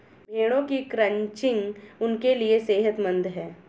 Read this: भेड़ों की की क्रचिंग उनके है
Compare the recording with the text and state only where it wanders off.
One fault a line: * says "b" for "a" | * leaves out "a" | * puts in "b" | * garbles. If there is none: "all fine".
* leaves out "की"
* puts in "लिए सेहतमंद"